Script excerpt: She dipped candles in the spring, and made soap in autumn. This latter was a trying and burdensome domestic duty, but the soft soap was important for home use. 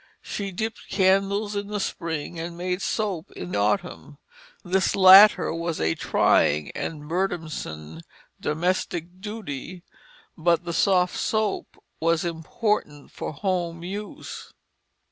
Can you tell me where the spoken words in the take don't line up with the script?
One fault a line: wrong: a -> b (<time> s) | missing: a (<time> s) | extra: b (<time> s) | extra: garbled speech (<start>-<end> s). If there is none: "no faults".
no faults